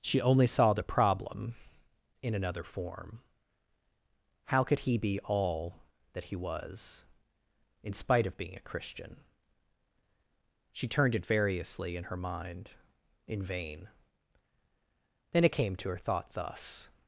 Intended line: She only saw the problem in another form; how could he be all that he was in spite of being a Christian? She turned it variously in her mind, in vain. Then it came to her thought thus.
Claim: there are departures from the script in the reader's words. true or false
false